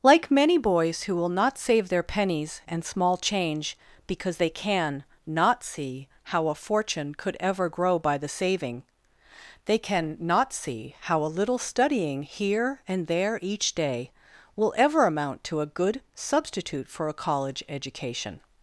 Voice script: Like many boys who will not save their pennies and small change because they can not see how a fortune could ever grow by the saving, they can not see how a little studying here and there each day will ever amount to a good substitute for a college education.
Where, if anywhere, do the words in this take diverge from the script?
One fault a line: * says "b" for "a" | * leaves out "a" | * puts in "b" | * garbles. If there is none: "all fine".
all fine